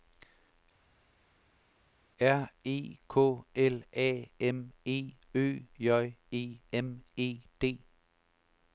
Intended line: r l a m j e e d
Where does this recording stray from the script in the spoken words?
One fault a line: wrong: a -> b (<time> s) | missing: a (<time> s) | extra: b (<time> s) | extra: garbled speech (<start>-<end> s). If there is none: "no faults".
extra: e k (2.6 s)
extra: e ø (4.9 s)
extra: m (6.7 s)